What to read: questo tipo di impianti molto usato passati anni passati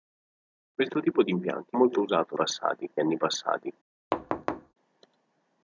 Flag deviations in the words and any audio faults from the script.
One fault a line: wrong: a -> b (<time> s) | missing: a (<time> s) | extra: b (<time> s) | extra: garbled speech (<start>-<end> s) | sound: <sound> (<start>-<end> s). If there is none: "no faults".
sound: thud (4.1-4.7 s)